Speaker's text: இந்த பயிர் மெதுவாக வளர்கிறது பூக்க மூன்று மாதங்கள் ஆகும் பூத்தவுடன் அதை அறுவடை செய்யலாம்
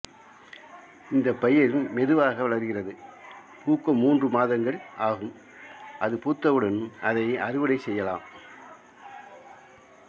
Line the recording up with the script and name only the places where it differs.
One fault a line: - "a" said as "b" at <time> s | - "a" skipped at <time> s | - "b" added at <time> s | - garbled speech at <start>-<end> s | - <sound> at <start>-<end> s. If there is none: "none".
- "அது" added at 6.0 s